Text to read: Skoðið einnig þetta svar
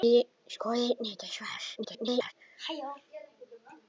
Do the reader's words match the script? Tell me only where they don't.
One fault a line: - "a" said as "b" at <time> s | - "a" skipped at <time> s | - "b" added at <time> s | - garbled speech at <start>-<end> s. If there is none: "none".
- garbled speech at 1.8-2.3 s